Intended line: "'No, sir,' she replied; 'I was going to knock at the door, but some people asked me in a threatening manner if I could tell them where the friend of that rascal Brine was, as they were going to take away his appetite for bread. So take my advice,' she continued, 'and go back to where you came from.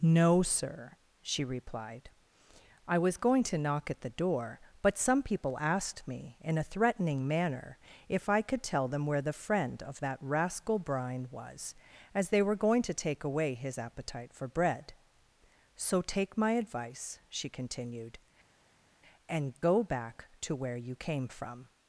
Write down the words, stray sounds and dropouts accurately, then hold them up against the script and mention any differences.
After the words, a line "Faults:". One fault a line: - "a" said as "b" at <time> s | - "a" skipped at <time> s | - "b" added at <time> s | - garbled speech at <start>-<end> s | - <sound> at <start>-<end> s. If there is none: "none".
"'No, sir,' she replied; 'I was going to knock at the door, but some people asked me in a threatening manner if I could tell them where the friend of that rascal Brine was, as they were going to take away his appetite for bread. So take my advice,' she continued, 'and go back to where you came from.
Faults:
none